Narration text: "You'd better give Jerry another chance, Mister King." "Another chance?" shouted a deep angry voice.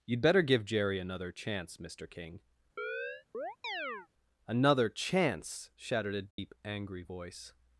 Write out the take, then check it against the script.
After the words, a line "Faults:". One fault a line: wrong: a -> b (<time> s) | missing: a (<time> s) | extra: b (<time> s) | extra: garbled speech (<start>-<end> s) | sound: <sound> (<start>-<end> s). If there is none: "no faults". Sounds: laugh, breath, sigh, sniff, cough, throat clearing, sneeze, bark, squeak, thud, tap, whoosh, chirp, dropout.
"You'd better give Jerry another chance, Mister King." "Another chance?" shouted a deep angry voice.
Faults:
sound: chirp (2.8-4.1 s)
sound: dropout (6.3-6.4 s)